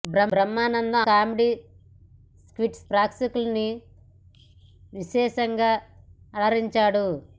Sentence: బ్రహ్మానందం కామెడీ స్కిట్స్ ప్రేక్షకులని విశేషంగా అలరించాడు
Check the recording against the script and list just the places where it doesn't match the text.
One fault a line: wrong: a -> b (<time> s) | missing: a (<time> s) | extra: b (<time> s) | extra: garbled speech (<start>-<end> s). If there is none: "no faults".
no faults